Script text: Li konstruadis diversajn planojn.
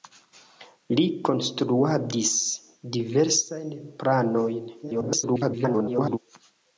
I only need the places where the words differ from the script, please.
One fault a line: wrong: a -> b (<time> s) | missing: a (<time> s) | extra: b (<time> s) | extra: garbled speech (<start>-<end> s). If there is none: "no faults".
extra: garbled speech (4.8-6.2 s)